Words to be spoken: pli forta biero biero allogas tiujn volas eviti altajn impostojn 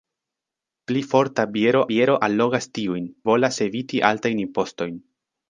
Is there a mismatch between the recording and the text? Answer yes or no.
no